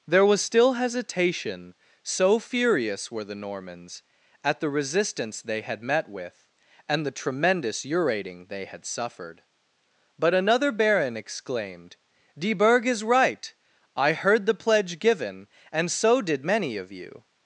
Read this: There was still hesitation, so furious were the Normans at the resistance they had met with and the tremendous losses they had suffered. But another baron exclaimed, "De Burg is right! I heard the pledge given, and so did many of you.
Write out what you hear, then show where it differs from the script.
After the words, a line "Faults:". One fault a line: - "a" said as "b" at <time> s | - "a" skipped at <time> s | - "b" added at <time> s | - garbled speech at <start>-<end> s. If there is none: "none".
There was still hesitation, so furious were the Normans at the resistance they had met with and the tremendous urating they had suffered. But another baron exclaimed, "De Burg is right! I heard the pledge given, and so did many of you.
Faults:
- "losses" said as "urating" at 7.8 s